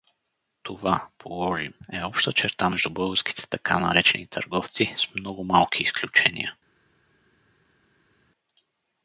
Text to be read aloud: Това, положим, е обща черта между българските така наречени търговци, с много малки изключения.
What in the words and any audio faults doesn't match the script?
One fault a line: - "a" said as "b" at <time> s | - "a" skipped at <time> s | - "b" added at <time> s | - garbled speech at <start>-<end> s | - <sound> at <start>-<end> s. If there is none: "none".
none